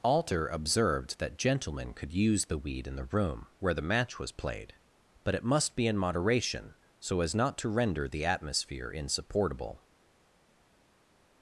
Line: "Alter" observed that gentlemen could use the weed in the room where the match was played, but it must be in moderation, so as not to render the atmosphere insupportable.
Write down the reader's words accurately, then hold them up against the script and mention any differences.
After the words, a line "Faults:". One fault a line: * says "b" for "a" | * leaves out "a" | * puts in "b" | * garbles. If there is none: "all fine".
"Alter" observed that gentlemen could use the weed in the room where the match was played, but it must be in moderation, so as not to render the atmosphere insupportable.
Faults:
all fine